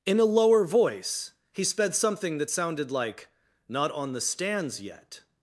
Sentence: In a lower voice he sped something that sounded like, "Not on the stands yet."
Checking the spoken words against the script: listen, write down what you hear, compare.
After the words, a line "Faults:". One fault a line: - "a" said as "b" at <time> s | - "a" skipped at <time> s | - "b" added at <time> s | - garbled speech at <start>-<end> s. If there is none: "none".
In a lower voice he sped something that sounded like, "Not on the stands yet."
Faults:
none